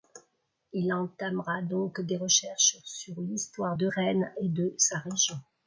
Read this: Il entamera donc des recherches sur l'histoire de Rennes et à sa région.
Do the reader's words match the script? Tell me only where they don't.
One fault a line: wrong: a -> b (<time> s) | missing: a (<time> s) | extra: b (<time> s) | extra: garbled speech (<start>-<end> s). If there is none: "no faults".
wrong: à -> de (4.5 s)